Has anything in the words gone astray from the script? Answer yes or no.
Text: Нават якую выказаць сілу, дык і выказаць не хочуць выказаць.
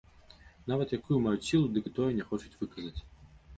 yes